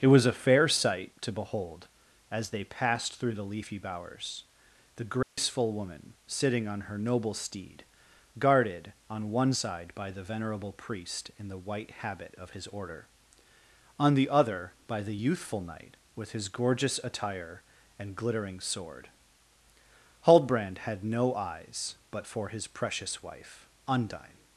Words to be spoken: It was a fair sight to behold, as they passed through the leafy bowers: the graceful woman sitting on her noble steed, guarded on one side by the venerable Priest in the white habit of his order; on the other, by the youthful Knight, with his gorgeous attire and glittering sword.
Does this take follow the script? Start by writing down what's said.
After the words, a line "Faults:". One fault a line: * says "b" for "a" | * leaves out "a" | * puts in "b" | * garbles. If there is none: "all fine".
It was a fair sight to behold, as they passed through the leafy bowers: the graceful woman sitting on her noble steed, guarded on one side by the venerable Priest in the white habit of his order; on the other, by the youthful Knight, with his gorgeous attire and glittering sword. Huldbrand had no eyes but for his precious wife; Undine
Faults:
* puts in "Huldbrand had no eyes but for his precious wife Undine"